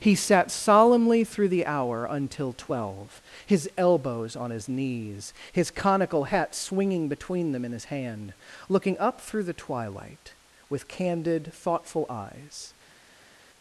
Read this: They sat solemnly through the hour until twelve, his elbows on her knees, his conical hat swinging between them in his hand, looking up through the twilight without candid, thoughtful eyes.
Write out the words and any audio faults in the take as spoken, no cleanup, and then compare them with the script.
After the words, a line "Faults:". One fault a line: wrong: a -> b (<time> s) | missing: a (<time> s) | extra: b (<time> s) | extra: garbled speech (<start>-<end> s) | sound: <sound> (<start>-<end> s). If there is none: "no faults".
He sat solemnly through the hour until twelve, his elbows on his knees, his conical hat swinging between them in his hand, looking up through the twilight with candid, thoughtful eyes.
Faults:
wrong: They -> He (0.0 s)
wrong: her -> his (4.5 s)
wrong: without -> with (10.7 s)